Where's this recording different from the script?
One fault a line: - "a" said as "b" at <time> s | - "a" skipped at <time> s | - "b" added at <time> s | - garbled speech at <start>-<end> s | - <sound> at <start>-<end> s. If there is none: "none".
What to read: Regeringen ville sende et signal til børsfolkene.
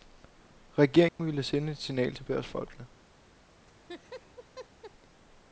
- dropout at 1.1-1.2 s
- laugh at 3.6-4.9 s